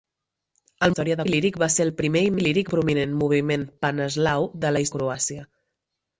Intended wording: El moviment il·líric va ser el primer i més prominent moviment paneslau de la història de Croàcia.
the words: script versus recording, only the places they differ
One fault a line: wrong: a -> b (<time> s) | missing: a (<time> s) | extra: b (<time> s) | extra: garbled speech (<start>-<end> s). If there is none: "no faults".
wrong: moviment -> història (0.9 s)
wrong: més -> il·líric (2.4 s)
missing: història (4.9 s)